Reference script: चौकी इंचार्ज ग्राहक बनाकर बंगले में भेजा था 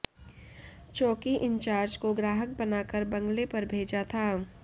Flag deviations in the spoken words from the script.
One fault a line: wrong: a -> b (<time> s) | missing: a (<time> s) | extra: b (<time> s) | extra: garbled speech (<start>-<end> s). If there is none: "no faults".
extra: को (2.0 s)
wrong: में -> पर (3.5 s)